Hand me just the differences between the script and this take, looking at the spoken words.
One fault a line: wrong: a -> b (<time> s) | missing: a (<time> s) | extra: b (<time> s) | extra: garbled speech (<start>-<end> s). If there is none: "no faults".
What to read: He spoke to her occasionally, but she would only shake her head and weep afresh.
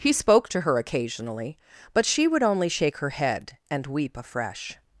no faults